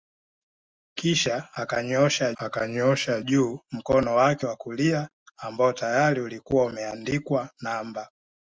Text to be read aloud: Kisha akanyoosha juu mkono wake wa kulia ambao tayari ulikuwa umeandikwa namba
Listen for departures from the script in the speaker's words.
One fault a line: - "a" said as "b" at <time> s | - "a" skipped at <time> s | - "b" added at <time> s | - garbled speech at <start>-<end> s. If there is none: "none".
- "akanyoosha" added at 2.4 s